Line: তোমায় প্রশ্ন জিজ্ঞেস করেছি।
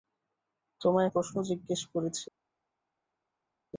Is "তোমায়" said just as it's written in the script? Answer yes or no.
yes